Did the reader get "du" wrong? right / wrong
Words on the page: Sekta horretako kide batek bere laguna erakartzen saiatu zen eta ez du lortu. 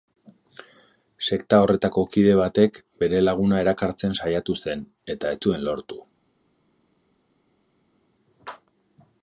wrong